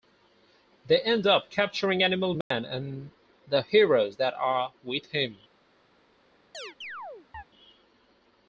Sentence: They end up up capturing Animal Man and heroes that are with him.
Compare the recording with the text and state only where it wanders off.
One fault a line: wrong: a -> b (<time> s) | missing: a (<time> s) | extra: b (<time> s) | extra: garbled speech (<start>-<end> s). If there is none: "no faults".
missing: up (1.5 s)
extra: the (3.5 s)